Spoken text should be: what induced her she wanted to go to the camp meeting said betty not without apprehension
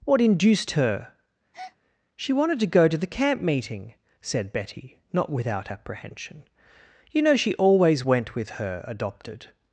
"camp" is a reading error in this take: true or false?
false